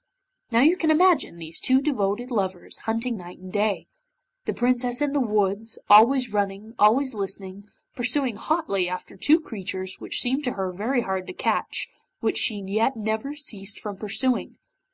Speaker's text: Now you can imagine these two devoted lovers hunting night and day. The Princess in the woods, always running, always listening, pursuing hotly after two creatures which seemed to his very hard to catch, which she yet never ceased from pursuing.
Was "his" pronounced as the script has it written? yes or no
no